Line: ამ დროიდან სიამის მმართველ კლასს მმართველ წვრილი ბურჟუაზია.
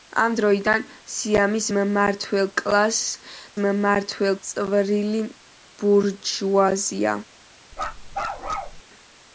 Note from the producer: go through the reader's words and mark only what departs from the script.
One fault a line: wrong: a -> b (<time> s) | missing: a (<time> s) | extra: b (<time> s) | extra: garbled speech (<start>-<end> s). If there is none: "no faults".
no faults